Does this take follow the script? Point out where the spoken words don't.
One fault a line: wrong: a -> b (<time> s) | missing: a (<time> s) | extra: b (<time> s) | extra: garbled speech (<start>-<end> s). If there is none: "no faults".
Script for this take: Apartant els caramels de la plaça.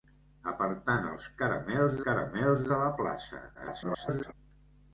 extra: caramels (2.1 s)
extra: garbled speech (3.5-4.3 s)